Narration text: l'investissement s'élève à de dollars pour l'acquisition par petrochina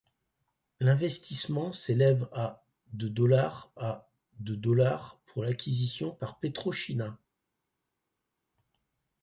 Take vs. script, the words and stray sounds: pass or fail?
fail